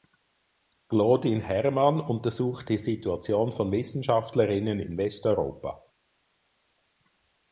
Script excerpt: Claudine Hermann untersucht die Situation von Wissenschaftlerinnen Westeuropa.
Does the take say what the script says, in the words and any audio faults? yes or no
no